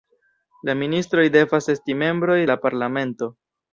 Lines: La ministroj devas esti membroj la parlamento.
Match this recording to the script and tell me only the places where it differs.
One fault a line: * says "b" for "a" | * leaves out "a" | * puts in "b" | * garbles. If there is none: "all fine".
all fine